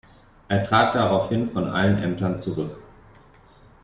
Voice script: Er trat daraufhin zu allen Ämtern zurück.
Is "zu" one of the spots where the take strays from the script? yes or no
yes